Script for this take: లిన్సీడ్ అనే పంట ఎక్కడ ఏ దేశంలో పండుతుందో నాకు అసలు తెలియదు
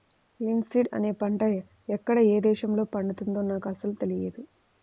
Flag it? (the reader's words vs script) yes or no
no